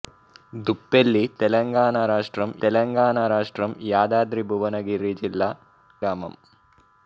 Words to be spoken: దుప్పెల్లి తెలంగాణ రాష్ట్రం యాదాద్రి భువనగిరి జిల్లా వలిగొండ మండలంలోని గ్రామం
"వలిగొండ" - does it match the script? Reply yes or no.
no